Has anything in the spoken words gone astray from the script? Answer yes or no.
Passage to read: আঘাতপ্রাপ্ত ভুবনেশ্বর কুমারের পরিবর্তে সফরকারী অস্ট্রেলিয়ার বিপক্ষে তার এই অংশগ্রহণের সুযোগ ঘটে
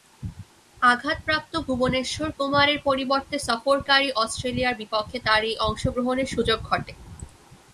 no